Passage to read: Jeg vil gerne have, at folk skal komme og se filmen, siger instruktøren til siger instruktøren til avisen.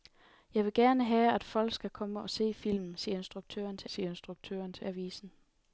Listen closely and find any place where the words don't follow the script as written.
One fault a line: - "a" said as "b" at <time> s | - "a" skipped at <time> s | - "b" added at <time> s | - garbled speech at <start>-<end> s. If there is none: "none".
none